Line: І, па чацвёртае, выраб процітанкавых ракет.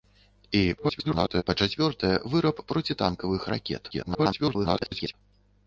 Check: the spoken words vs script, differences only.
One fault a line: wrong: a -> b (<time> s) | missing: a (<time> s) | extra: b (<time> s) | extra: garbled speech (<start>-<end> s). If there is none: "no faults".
extra: garbled speech (0.8-1.4 s)
extra: garbled speech (3.9-5.1 s)